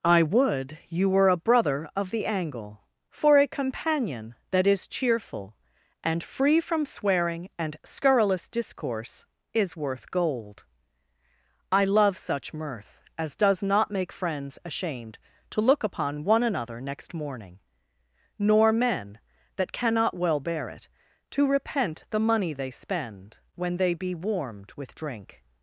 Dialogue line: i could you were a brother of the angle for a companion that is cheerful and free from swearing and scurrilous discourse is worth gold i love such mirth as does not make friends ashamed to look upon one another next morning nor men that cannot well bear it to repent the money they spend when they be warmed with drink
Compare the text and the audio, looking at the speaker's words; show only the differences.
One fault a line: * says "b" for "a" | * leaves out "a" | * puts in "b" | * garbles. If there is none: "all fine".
* says "would" for "could"